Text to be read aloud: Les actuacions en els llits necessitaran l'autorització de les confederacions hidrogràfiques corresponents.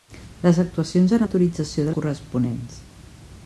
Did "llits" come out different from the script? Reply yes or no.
yes